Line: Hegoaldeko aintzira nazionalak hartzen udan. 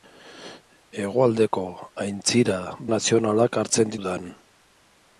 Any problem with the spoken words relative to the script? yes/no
no